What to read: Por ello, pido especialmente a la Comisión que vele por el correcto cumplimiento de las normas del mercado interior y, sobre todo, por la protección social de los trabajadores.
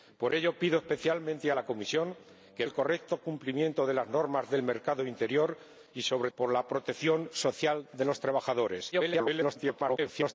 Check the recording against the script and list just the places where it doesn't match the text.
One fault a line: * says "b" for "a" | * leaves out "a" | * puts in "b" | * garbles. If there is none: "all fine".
* leaves out "vele por"
* leaves out "todo"
* garbles